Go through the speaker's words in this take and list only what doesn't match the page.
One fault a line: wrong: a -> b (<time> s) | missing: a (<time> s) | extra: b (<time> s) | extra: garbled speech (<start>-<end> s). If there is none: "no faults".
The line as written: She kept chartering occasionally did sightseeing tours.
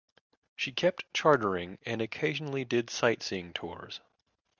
extra: and (1.9 s)